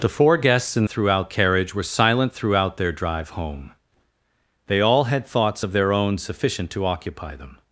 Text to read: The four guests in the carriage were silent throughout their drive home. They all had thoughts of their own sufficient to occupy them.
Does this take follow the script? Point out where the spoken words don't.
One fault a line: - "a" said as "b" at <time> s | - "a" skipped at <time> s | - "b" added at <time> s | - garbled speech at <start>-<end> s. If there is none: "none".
- "the" said as "throughout" at 0.9 s